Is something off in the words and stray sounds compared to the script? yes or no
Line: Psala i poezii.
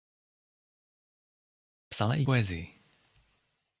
no